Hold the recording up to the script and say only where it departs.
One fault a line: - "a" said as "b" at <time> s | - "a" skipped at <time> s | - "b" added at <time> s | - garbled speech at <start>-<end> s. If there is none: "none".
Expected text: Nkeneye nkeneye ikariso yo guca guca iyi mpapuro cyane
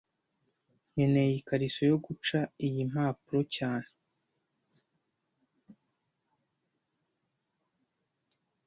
- "nkeneye" skipped at 1.3 s
- "guca" skipped at 2.4 s